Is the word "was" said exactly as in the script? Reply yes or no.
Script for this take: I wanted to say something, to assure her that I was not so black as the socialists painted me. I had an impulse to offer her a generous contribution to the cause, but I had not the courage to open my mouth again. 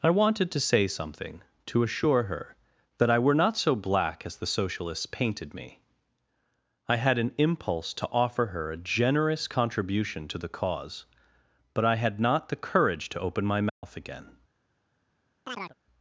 no